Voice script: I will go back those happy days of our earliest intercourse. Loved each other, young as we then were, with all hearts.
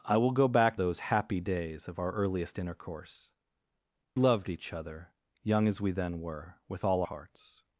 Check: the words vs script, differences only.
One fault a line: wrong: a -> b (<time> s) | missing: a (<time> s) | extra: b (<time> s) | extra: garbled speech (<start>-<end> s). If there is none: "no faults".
no faults